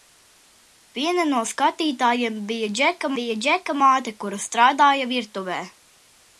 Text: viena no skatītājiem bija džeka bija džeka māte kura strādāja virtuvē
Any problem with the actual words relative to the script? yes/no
no